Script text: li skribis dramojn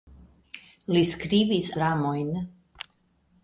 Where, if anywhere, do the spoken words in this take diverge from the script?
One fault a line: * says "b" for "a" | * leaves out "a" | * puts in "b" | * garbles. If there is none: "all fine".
all fine